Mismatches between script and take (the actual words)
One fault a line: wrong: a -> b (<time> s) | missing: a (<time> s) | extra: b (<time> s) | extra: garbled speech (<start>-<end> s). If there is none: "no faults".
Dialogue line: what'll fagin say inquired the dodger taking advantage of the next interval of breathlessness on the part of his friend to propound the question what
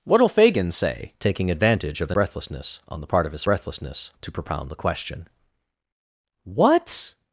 missing: inquired the dodger (1.1 s)
missing: next interval of (2.2 s)
wrong: friend -> breathlessness (3.4 s)